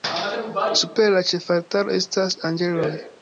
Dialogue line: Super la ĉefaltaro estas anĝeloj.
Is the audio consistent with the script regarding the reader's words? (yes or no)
yes